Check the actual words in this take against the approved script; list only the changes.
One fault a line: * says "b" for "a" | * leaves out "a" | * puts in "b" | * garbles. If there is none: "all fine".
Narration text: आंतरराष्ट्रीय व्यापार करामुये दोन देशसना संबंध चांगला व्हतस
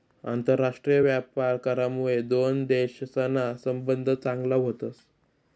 all fine